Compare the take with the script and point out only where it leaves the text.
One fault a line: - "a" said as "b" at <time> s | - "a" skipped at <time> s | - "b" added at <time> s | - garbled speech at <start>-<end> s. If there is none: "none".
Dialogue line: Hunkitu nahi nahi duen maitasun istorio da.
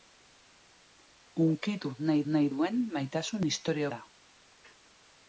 none